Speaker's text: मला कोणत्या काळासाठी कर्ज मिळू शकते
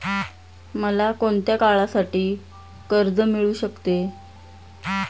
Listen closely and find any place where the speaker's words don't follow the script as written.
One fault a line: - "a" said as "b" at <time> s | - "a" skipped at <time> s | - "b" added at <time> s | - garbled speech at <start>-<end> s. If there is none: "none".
none